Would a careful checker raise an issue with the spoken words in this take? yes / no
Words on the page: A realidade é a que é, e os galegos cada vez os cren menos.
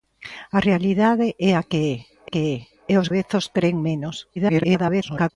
yes